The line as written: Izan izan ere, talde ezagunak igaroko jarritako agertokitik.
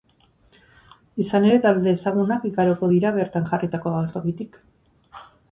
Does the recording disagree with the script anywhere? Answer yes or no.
yes